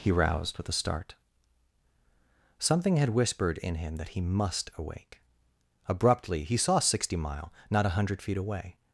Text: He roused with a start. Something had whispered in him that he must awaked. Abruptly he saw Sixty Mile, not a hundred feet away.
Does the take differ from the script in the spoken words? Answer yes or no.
yes